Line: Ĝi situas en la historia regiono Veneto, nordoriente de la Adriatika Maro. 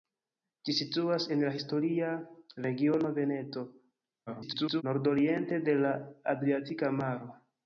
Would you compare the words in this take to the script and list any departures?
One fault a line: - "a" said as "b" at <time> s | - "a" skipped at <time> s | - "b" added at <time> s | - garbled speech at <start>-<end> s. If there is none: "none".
- garbled speech at 4.3-4.8 s